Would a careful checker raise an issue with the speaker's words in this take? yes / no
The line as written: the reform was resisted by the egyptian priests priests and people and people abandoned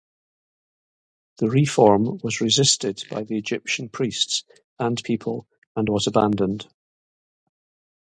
yes